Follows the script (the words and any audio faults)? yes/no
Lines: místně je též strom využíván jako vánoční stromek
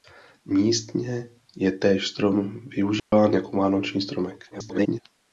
no